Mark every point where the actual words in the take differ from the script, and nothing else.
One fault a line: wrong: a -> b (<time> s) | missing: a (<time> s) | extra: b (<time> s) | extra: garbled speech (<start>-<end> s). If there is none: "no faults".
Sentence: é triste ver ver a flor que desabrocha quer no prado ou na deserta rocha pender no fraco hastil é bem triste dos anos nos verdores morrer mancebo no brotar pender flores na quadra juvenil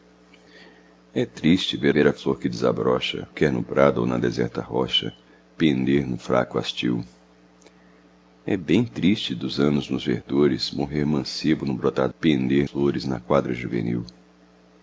no faults